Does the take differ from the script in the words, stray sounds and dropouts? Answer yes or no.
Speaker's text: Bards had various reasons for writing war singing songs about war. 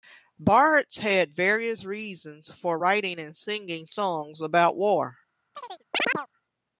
yes